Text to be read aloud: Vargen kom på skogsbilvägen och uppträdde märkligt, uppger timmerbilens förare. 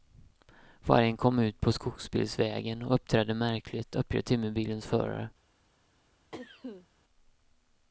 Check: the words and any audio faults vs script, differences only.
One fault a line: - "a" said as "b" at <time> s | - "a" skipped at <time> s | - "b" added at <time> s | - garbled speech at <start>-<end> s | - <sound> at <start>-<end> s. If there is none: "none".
- "ut" added at 1.4 s
- cough at 6.3-6.9 s